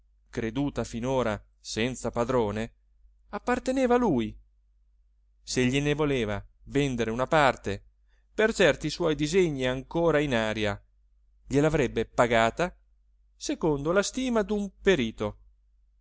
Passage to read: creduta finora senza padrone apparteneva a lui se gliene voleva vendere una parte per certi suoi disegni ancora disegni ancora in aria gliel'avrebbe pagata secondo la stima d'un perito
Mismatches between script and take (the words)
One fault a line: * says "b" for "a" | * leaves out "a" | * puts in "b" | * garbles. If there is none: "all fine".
* leaves out "disegni ancora"